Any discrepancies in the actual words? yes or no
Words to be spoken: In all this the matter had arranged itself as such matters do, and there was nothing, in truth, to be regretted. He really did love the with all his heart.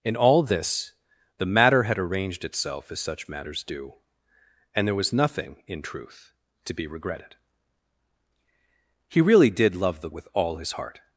no